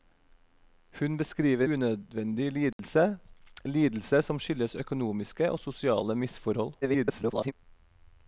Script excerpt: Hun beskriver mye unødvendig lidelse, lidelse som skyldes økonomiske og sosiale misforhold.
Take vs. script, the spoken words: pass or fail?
fail